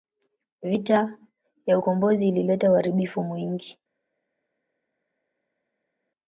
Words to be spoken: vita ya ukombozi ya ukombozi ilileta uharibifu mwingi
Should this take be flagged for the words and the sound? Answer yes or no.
yes